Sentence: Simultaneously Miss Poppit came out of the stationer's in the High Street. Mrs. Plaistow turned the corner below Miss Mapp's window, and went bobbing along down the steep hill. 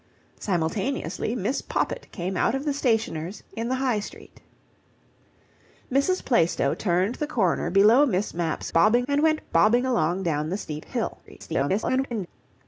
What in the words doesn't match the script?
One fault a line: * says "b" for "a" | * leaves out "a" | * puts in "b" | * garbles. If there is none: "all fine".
* says "bobbing" for "window"
* garbles